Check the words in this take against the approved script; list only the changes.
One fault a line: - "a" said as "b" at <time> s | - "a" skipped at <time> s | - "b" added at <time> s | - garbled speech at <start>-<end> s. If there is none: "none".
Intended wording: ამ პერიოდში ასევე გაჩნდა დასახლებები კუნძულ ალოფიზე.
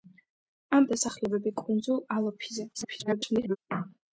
- "პერიოდში ასევე გაჩნდა" skipped at 0.9 s
- garbled speech at 2.7-3.6 s